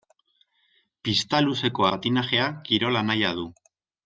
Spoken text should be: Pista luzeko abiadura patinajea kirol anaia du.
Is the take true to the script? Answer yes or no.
no